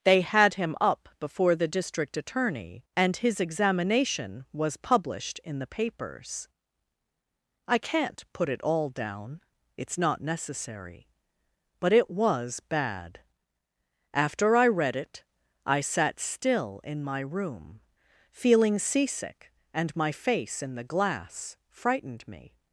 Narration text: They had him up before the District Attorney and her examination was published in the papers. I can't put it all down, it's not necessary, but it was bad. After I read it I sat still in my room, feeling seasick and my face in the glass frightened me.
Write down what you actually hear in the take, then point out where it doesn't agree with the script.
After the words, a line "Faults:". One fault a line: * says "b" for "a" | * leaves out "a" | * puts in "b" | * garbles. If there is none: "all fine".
They had him up before the District Attorney and his examination was published in the papers. I can't put it all down, it's not necessary, but it was bad. After I read it I sat still in my room, feeling seasick and my face in the glass frightened me.
Faults:
* says "his" for "her"